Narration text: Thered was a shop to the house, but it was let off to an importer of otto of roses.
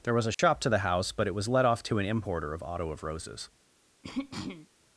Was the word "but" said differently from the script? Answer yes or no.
no